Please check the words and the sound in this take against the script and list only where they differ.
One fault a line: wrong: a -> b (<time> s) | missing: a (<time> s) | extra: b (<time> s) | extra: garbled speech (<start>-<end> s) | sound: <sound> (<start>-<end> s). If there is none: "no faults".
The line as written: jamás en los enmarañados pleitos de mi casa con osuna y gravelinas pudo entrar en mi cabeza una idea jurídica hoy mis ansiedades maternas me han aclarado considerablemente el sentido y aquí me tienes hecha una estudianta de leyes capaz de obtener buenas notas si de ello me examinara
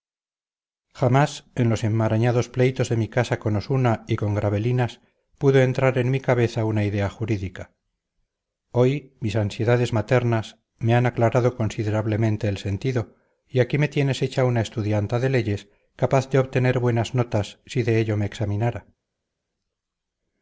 extra: con (4.1 s)